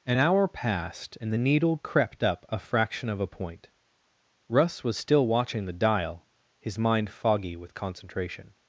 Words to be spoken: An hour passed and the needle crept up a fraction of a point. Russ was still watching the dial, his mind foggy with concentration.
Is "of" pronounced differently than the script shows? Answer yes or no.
no